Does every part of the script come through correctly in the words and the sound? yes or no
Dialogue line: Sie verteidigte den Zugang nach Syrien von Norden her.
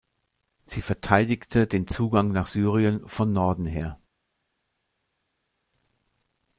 yes